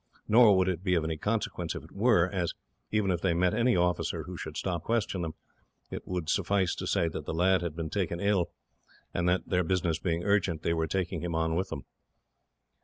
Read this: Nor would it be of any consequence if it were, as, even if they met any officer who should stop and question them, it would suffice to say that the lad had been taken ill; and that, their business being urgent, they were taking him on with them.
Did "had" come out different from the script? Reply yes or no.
no